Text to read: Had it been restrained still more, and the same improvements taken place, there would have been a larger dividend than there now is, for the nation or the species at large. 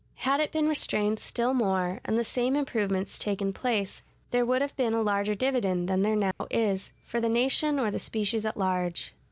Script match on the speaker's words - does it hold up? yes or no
yes